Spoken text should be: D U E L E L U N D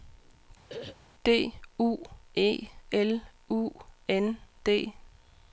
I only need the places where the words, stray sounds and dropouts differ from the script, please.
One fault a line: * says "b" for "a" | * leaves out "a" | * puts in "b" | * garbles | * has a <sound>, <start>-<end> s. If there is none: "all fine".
* has a throat clearing, 0.7-1.0 s
* leaves out "E L"